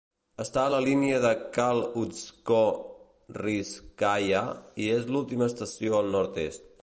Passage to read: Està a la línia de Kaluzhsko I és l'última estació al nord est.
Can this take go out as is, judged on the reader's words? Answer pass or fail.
fail